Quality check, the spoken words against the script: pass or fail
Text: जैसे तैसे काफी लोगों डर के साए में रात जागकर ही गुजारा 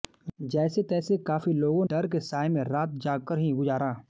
pass